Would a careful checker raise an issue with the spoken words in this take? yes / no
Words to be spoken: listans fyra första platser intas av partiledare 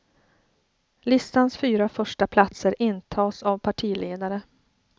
no